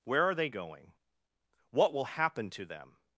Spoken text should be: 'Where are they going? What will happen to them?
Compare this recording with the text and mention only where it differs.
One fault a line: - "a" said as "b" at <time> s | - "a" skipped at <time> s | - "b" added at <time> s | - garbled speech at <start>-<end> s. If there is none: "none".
none